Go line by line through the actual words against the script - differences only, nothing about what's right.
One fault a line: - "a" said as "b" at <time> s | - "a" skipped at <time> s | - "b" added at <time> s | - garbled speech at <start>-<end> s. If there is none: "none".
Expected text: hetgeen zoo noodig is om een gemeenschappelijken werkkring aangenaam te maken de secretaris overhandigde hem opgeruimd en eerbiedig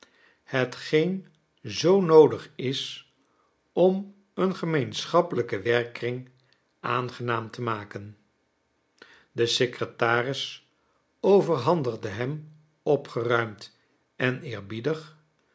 none